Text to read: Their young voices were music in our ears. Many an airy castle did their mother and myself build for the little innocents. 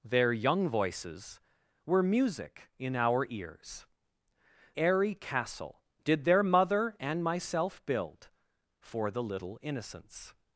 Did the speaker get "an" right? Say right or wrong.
wrong